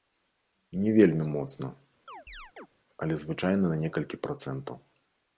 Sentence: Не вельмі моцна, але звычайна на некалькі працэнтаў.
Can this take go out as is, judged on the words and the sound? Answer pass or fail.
fail